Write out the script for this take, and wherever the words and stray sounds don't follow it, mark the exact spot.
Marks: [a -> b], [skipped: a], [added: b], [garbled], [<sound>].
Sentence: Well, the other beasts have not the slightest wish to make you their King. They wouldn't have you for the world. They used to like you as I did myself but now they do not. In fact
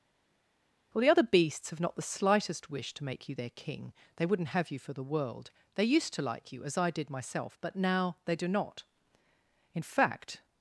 Well, the other beasts have not the slightest wish to make you their King. They wouldn't have you for the world. They used to like you as I did myself but now they do not. In fact